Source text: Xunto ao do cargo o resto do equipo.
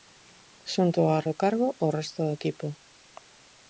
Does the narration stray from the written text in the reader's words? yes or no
no